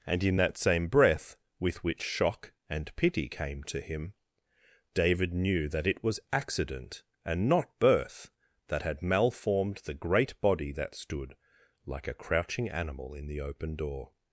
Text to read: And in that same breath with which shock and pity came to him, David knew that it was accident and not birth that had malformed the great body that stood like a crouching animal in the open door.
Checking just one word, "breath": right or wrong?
right